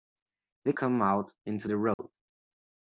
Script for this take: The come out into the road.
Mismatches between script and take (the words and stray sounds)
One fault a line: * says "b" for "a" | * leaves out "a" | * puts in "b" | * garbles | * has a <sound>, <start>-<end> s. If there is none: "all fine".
* has a dropout, 1.9-2.0 s